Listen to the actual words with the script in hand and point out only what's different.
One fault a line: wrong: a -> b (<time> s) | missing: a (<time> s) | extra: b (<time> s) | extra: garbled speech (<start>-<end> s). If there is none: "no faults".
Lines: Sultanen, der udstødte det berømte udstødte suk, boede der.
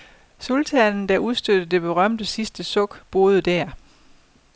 wrong: udstødte -> sidste (2.2 s)